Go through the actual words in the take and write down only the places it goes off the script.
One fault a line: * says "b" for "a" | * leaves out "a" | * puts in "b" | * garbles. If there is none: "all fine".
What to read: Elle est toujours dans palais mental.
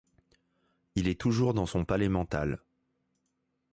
* says "Il" for "Elle"
* puts in "son"